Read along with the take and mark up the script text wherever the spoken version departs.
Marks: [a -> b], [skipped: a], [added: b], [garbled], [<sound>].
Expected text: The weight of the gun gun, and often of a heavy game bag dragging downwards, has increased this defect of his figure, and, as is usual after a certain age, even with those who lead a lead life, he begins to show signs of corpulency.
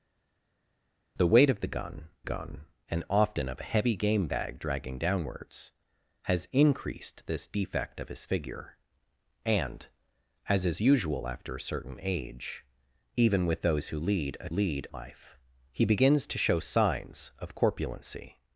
The weight of the gun gun, and often of a heavy game bag dragging downwards, has increased this defect of his figure, and, as is usual after a certain age, even with those who lead a lead life, he begins to show signs of corpulency.